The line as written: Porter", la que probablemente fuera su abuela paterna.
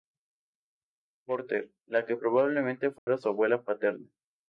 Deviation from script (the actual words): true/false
false